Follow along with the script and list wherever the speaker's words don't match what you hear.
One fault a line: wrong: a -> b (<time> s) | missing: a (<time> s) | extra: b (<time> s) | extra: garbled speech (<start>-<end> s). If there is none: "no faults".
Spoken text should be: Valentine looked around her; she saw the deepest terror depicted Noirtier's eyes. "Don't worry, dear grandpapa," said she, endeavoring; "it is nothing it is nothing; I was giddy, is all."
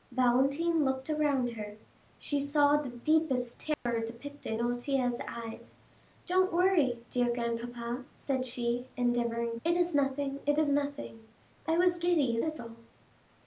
no faults